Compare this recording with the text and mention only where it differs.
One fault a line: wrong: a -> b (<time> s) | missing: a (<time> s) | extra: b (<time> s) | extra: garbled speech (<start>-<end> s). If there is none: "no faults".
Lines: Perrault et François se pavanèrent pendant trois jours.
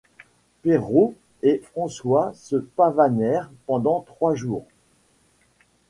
no faults